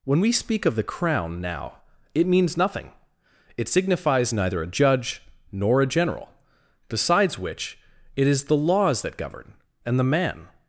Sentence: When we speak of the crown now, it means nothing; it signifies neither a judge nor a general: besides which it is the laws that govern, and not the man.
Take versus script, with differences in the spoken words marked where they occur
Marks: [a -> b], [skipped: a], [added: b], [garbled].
When we speak of the crown now, it means nothing; it signifies neither a judge nor a general: besides which it is the laws that govern, and [skipped: not] the man.